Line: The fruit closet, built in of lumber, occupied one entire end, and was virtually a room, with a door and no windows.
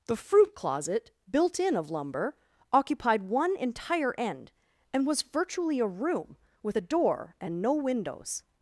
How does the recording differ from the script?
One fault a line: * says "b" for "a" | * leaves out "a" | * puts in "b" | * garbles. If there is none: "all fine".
all fine